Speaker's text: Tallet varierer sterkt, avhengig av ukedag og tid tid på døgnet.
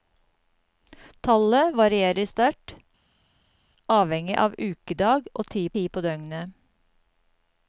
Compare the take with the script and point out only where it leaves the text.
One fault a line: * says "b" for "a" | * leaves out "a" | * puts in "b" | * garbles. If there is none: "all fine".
all fine